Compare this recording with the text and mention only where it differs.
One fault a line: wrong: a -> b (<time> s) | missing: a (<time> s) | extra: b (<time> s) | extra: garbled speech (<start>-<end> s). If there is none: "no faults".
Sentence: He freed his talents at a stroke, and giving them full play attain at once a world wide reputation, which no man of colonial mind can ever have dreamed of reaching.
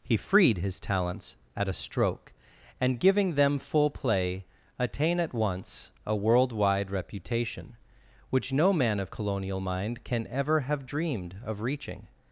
no faults